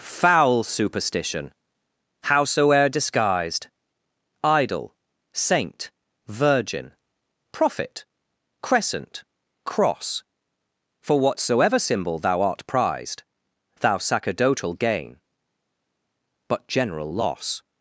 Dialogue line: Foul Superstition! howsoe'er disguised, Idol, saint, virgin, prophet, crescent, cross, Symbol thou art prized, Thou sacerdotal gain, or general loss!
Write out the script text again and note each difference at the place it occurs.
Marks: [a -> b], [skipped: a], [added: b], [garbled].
Foul Superstition! howsoe'er disguised, Idol, saint, virgin, prophet, crescent, cross, [added: For whatsoever] Symbol thou art prized, Thou sacerdotal gain, [or -> but] general loss!